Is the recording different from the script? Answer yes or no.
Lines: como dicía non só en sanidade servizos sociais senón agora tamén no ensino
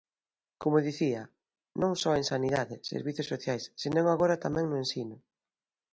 no